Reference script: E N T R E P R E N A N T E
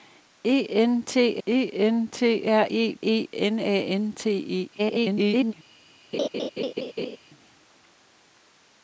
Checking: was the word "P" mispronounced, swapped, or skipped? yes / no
yes